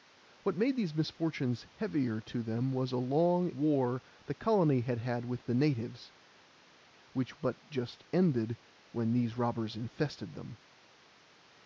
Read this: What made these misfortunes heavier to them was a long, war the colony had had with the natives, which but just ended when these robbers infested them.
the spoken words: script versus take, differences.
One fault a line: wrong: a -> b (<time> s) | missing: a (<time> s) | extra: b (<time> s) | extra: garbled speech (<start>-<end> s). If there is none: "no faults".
no faults